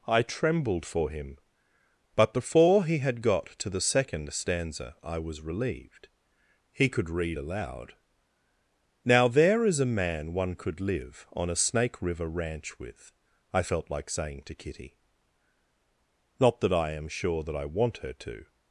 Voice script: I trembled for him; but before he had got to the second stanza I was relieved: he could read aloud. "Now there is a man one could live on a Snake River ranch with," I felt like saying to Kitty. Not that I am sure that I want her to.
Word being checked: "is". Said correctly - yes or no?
yes